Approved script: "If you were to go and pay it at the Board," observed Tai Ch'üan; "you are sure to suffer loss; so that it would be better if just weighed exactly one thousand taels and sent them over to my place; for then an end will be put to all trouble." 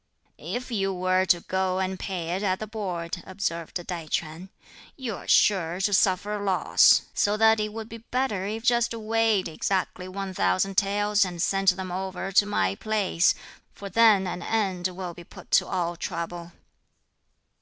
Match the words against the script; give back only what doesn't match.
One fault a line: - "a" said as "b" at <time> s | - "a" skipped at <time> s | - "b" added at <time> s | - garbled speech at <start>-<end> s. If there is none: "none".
none